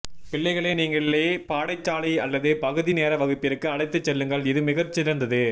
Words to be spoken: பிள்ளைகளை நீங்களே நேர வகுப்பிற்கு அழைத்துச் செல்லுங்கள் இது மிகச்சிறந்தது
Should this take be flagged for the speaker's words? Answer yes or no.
yes